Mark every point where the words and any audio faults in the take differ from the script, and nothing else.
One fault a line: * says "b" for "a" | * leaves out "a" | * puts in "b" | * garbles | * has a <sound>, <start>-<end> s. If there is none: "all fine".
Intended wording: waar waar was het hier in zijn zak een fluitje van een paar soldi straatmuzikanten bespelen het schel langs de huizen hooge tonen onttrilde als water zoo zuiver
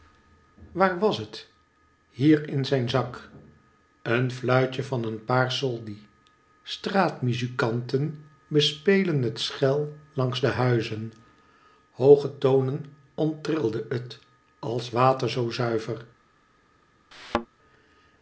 * leaves out "waar"
* puts in "het"
* has a thud, 17.1-17.5 s